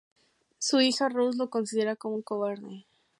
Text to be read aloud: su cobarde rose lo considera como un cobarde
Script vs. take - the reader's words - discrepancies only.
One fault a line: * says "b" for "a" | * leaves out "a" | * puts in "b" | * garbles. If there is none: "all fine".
* says "hija" for "cobarde"